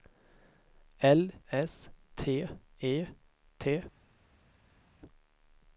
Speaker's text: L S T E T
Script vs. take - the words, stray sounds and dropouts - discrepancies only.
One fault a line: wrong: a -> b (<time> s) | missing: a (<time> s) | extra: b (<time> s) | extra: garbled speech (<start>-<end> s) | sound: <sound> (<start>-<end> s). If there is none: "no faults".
no faults